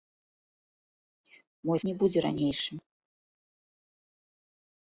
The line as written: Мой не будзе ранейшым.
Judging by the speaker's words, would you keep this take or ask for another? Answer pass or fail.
pass